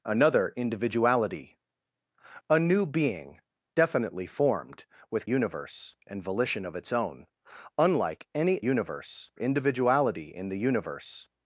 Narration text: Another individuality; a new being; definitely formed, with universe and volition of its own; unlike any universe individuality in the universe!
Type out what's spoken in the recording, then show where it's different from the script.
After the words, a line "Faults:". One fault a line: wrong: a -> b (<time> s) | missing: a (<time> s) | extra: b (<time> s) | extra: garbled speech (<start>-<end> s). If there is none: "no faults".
Another individuality; a new being; definitely formed, with universe and volition of its own; unlike any universe individuality in the universe!
Faults:
no faults